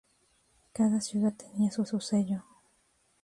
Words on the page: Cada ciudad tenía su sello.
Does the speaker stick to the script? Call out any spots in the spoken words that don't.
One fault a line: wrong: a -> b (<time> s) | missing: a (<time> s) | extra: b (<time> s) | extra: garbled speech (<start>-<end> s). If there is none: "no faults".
extra: su (1.8 s)